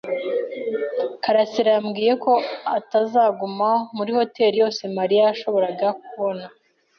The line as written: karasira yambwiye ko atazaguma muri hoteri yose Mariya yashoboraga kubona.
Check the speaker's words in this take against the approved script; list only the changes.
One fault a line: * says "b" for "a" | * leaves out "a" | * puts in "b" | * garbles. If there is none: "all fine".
all fine